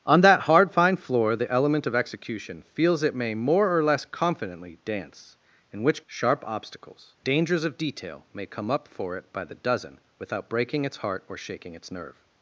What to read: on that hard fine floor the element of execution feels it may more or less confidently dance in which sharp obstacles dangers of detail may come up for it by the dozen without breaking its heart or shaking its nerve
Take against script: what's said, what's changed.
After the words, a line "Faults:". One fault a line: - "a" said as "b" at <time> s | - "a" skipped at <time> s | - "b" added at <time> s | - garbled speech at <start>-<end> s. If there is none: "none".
on that hard fine floor the element of execution feels it may more or less confidently dance in which sharp obstacles dangers of detail may come up for it by the dozen without breaking its heart or shaking its nerve
Faults:
none